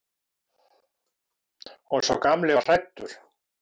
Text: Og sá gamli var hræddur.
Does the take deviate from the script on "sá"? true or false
false